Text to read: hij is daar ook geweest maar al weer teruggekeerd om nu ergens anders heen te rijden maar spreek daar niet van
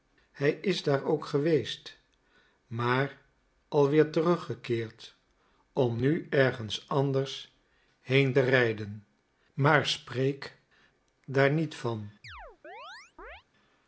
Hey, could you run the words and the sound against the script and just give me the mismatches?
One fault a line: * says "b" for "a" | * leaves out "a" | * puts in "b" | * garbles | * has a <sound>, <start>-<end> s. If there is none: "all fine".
* has a chirp, 12.2-13.4 s